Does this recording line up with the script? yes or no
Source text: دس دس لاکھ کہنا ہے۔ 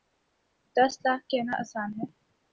no